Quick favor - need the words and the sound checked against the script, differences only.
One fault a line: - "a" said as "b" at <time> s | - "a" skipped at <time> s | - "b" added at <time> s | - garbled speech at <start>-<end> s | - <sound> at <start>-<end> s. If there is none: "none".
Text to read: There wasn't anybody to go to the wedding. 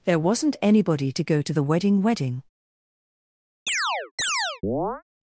- "wedding" added at 2.0 s
- chirp at 3.7-5.0 s